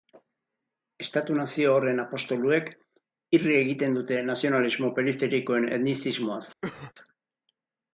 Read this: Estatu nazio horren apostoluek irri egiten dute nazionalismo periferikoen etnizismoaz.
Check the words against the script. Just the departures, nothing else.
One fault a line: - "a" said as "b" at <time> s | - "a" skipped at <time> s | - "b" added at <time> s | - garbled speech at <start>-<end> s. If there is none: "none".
none